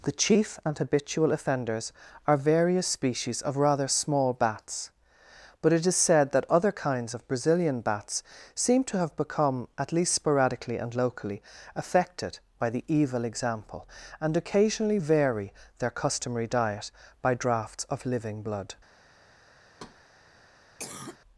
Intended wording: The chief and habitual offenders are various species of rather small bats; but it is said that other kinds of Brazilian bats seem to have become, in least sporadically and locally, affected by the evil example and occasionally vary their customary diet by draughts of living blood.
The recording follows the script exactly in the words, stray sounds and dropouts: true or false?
false